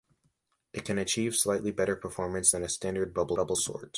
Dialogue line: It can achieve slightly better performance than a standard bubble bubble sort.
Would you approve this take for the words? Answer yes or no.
yes